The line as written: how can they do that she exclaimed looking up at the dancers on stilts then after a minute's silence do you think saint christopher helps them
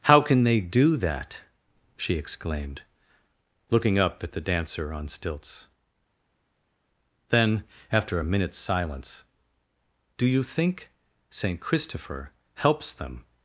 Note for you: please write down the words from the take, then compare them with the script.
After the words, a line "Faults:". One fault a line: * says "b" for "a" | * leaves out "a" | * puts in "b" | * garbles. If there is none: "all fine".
how can they do that she exclaimed looking up at the dancer on stilts then after a minute's silence do you think saint christopher helps them
Faults:
* says "dancer" for "dancers"